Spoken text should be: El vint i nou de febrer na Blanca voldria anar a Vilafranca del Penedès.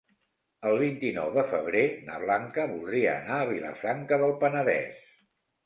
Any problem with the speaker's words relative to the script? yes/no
no